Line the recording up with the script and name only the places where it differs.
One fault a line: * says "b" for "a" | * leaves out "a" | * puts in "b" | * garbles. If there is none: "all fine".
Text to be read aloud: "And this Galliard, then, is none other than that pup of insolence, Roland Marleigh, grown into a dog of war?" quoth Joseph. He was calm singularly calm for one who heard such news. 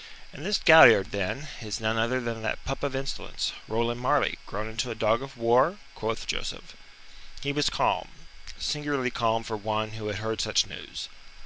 * puts in "had"